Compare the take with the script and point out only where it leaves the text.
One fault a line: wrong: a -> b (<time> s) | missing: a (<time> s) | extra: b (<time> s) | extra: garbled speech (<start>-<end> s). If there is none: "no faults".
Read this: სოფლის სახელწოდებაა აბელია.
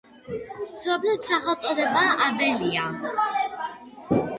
no faults